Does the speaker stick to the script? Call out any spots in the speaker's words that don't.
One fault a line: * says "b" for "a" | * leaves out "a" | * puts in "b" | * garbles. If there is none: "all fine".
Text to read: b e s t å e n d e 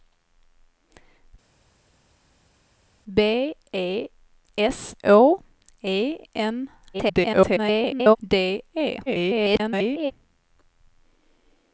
* leaves out "t"
* garbles
* garbles